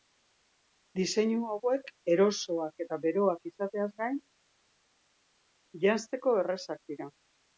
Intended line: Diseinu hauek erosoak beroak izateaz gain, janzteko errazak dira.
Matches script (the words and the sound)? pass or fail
fail